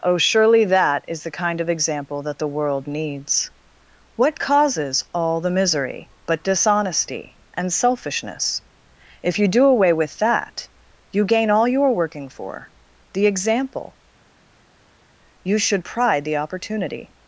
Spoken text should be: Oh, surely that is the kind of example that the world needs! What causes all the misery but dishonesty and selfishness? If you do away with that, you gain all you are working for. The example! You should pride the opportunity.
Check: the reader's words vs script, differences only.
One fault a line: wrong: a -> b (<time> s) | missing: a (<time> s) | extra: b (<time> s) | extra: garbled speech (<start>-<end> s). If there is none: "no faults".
no faults